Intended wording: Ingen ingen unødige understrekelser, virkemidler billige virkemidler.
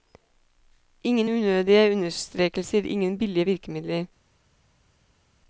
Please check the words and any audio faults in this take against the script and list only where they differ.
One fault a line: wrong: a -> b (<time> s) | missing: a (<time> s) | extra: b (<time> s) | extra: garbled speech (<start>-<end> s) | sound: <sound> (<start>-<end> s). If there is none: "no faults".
missing: ingen (1.3 s)
wrong: virkemidler -> ingen (2.8 s)